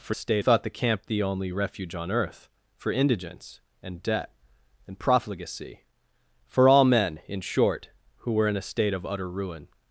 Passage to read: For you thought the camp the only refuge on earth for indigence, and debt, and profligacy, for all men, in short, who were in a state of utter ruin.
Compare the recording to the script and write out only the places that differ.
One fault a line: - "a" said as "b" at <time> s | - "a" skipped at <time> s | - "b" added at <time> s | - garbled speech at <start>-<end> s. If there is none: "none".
- "you" said as "state" at 0.1 s